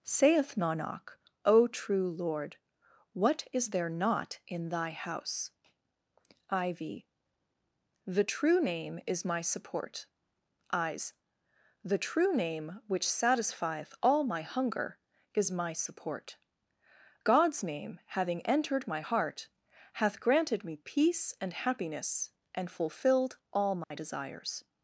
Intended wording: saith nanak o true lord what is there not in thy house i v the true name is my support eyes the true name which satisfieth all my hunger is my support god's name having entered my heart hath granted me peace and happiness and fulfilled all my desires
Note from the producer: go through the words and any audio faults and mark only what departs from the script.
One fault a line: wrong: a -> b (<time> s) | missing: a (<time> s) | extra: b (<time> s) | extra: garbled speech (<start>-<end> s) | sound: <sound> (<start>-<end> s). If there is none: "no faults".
sound: dropout (23.8-23.9 s)